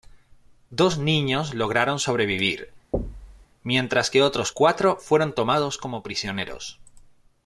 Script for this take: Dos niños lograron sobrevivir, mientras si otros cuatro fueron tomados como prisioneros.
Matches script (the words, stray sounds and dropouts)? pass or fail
fail